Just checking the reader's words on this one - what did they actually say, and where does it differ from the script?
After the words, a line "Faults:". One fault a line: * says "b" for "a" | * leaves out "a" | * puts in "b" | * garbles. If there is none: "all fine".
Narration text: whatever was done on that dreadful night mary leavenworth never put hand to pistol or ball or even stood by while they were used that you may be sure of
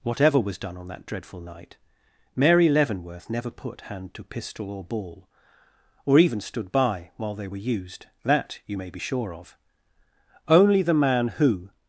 whatever was done on that dreadful night mary leavenworth never put hand to pistol or ball or even stood by while they were used that you may be sure of only the man who
Faults:
* puts in "only the man who"